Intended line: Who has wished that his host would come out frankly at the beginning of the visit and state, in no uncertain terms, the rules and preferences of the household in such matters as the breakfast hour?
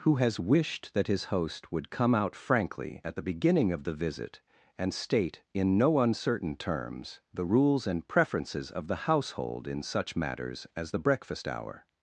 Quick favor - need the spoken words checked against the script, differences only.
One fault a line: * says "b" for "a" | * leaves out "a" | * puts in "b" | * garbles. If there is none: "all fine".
all fine